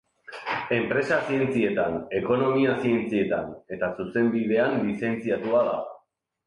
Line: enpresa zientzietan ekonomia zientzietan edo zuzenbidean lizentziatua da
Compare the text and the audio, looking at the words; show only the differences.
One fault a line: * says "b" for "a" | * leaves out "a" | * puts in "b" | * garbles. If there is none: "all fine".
* says "eta" for "edo"